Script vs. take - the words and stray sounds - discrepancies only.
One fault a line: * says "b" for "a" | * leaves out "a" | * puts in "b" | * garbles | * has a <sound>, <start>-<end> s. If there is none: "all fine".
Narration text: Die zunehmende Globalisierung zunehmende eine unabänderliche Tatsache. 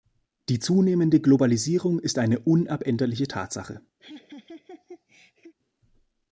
* says "ist" for "zunehmende"
* has a laugh, 4.0-5.5 s